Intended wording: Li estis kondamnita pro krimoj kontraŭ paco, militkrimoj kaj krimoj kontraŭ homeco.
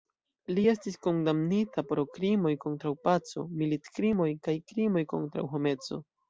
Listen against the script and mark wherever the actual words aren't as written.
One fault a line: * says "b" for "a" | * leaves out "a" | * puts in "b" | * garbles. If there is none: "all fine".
all fine